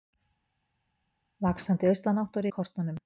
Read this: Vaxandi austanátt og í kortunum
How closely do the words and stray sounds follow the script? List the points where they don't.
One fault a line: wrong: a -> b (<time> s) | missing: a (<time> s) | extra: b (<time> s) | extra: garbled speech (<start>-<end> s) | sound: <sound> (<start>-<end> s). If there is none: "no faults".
no faults